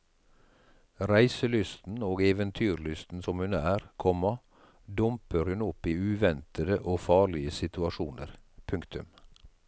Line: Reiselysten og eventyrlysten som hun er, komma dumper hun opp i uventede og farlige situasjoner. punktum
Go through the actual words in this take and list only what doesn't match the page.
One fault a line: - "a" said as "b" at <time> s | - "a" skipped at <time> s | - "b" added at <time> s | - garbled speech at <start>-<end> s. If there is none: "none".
none